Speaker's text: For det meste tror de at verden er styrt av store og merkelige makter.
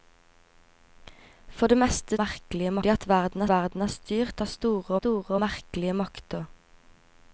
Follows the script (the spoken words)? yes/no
no